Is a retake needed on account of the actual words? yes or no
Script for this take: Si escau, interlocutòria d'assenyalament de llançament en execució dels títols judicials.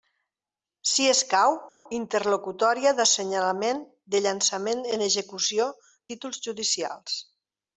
yes